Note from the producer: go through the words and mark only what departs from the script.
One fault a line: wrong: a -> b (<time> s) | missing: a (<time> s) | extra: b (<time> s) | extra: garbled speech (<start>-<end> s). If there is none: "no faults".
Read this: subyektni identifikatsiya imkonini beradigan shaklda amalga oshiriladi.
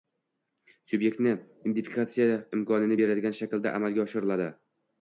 no faults